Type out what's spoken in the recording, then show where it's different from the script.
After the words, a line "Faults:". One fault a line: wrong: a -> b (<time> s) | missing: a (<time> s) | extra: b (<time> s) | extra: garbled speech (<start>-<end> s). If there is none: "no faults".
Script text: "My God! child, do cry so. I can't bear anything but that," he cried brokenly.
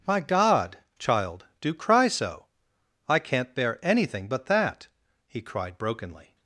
"My God! child, do cry so. I can't bear anything but that," he cried brokenly.
Faults:
no faults